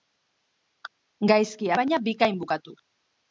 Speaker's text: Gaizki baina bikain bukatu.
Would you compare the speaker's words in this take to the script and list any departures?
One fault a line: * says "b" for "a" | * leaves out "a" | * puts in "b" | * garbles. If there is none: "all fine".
all fine